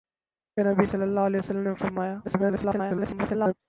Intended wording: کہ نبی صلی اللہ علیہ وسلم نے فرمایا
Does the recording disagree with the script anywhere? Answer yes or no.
yes